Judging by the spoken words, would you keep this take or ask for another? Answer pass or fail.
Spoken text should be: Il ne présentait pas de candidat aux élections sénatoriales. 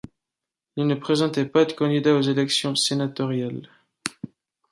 pass